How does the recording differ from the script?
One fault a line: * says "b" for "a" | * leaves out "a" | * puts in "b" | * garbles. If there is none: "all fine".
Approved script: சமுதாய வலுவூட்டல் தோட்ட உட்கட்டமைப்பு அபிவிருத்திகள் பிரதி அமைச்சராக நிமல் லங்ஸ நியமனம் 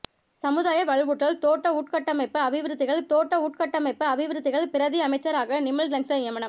* puts in "தோட்ட உட்கட்டமைப்பு அபிவிருத்திகள்"